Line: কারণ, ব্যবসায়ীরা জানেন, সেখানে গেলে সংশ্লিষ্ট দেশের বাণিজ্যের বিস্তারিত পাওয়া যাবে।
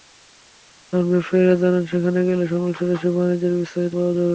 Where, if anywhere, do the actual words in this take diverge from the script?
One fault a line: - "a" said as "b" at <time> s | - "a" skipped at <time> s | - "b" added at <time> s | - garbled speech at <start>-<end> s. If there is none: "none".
none